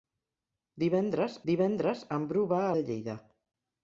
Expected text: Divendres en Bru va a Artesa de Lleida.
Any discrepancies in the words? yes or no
yes